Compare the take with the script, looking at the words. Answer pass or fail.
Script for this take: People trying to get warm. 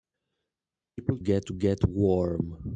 fail